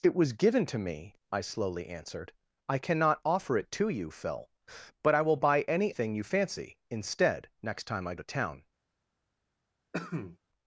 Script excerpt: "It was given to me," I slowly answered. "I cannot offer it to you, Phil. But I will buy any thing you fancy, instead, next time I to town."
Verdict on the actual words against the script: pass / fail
pass